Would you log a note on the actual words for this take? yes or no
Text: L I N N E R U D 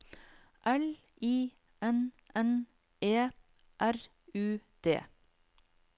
no